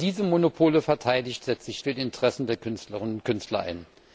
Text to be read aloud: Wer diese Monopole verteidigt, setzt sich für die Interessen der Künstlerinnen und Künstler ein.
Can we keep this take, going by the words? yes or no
yes